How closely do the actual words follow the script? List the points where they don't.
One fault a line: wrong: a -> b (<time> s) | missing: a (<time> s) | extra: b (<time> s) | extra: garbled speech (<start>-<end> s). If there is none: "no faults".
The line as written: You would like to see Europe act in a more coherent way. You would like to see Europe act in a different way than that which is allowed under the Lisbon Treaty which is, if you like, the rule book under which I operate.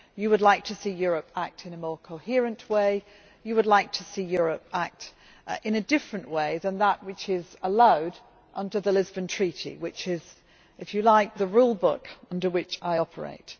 no faults